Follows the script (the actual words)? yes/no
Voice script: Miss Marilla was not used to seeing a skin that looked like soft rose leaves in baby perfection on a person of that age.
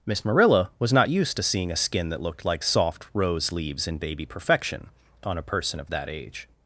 yes